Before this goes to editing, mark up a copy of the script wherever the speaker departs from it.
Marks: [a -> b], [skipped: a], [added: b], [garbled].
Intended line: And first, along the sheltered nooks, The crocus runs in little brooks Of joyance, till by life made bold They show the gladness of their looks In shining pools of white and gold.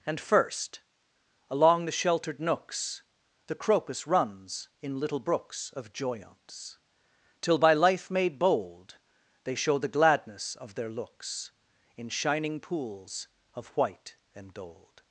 And first, along the sheltered nooks, The crocus runs in little brooks Of joyance, till by life made bold They show the gladness of their looks In shining pools of white and gold.